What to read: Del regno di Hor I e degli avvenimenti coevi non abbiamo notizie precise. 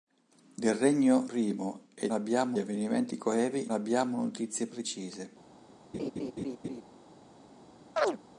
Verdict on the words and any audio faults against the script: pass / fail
fail